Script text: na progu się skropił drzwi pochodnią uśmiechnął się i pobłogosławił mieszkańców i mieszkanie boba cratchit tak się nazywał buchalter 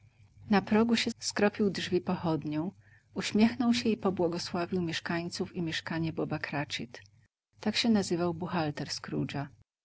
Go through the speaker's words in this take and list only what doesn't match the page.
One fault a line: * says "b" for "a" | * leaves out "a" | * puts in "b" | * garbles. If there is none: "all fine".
all fine